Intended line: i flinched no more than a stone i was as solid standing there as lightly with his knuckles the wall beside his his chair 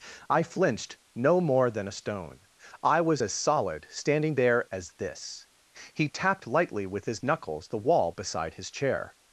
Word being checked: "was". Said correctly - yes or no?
yes